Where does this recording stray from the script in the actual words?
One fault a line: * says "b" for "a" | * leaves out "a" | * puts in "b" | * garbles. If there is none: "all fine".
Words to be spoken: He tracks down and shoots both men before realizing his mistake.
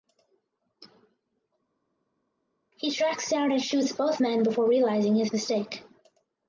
all fine